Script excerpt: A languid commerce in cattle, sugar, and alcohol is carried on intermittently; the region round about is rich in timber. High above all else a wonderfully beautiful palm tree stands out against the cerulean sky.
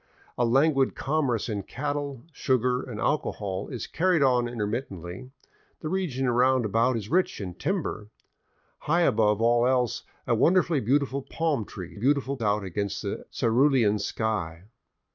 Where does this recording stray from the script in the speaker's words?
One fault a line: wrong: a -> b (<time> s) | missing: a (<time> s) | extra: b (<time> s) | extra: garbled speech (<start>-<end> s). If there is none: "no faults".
wrong: stands -> beautiful (11.9 s)